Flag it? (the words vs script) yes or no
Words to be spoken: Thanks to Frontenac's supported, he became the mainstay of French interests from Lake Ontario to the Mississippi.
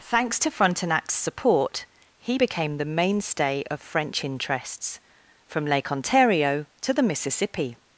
yes